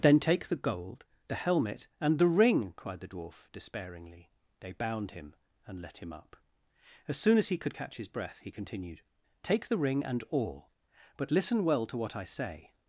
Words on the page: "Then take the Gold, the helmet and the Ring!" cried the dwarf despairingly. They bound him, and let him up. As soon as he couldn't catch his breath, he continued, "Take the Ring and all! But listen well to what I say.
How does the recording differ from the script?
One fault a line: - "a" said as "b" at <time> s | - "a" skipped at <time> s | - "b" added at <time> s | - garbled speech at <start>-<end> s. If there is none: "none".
- "couldn't" said as "could" at 7.6 s